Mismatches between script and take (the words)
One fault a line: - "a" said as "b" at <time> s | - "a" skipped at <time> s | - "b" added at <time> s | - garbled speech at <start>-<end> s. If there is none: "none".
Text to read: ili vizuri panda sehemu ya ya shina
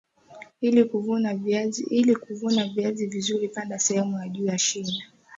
- "kuvuna viazi" added at 2.1 s
- "juu" added at 4.3 s